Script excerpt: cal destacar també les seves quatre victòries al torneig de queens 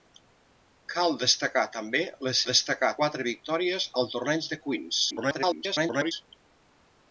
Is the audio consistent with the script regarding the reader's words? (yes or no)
no